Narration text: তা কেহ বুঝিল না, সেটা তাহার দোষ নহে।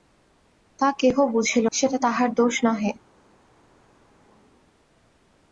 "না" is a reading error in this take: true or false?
true